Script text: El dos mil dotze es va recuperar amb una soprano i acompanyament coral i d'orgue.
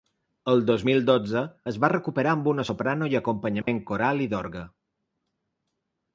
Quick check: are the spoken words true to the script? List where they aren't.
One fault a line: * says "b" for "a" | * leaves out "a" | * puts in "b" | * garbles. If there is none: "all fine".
all fine